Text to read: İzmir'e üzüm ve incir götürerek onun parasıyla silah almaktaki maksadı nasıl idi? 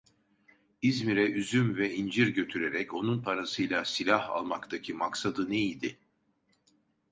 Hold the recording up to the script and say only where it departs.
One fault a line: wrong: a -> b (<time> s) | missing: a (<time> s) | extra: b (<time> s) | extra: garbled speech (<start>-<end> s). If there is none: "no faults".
wrong: nasıl -> ne (5.5 s)